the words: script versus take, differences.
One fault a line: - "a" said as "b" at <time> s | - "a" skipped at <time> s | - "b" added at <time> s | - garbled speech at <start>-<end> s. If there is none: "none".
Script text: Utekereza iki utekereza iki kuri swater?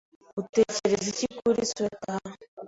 - "utekereza iki" skipped at 1.3 s